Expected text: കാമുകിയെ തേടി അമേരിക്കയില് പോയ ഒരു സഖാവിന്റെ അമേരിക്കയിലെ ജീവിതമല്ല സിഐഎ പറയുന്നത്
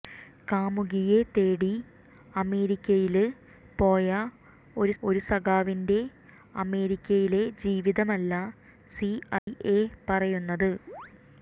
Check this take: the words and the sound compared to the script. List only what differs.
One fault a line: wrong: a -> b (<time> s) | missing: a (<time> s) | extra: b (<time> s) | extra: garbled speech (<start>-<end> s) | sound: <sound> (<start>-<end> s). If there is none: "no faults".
extra: ഒരു (5.0 s)
sound: dropout (9.4-9.5 s)
sound: chirp (10.9-11.1 s)